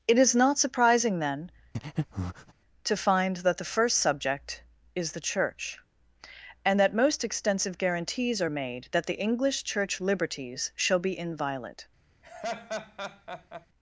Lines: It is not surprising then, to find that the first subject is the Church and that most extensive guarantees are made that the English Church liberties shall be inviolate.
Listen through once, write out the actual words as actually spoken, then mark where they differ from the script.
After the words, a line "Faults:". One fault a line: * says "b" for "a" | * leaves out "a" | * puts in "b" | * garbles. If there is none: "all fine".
It is not surprising then, to find that the first subject is the Church and that most extensive guarantees are made that the English Church liberties shall be inviolate.
Faults:
all fine